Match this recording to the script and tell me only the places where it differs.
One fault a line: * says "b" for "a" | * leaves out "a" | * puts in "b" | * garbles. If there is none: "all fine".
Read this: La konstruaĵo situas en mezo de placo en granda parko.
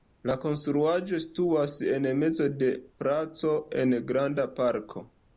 all fine